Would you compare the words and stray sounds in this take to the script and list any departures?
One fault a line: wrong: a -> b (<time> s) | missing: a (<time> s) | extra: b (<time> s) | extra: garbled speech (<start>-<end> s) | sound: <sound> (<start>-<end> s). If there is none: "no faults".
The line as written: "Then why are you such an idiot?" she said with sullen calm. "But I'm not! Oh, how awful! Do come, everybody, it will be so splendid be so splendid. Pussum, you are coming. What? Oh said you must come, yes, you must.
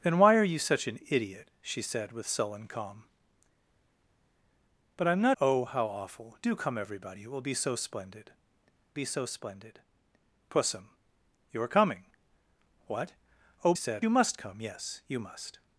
no faults